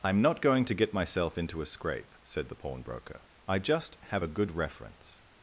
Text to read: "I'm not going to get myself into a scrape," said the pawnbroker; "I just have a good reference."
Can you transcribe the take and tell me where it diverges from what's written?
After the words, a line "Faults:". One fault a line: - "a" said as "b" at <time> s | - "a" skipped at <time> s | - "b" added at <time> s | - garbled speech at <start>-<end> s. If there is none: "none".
"I'm not going to get myself into a scrape," said the pawnbroker; "I just have a good reference."
Faults:
none